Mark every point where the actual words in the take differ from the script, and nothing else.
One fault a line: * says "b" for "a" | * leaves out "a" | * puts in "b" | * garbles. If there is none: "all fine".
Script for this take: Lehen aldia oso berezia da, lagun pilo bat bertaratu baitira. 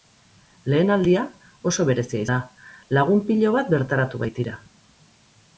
all fine